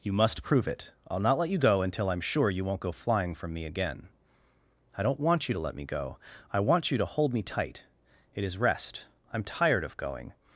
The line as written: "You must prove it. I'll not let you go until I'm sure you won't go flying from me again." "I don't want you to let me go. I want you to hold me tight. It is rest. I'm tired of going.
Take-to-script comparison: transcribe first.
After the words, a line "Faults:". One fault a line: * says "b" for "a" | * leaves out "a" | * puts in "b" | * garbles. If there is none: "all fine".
"You must prove it. I'll not let you go until I'm sure you won't go flying from me again." "I don't want you to let me go. I want you to hold me tight. It is rest. I'm tired of going.
Faults:
all fine